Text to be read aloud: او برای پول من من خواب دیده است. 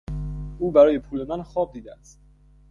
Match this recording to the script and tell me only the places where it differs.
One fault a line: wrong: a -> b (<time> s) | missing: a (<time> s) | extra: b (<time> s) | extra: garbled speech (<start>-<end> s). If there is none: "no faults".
missing: من (1.4 s)